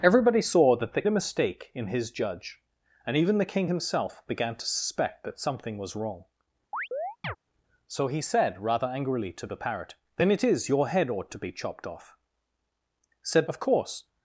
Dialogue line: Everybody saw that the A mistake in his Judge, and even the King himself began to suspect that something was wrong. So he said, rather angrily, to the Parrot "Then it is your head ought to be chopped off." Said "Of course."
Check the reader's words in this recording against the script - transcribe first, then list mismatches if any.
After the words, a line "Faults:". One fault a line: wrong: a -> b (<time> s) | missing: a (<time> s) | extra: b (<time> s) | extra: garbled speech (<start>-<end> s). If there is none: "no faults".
Everybody saw that the A mistake in his Judge, and even the King himself began to suspect that something was wrong. So he said, rather angrily, to the Parrot "Then it is your head ought to be chopped off." Said "Of course."
Faults:
no faults